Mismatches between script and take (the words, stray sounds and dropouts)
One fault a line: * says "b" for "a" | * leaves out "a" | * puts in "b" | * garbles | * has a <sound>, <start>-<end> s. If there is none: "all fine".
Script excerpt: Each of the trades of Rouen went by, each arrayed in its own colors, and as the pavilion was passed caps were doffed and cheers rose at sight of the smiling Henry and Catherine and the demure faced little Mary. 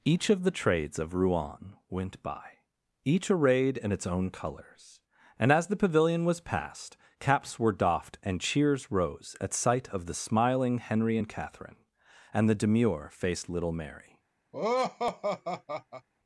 * has a laugh, 14.5-16.1 s